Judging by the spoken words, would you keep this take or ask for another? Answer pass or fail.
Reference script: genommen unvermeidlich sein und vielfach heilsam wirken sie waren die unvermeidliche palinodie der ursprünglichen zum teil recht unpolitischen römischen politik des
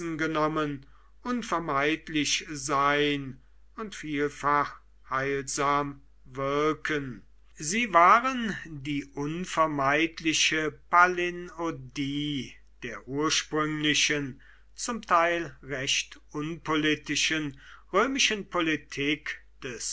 pass